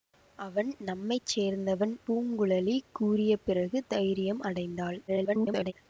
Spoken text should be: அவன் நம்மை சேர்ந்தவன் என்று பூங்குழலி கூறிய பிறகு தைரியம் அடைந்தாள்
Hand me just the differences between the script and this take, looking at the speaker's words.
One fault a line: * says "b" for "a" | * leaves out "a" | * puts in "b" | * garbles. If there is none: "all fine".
* leaves out "என்று"
* garbles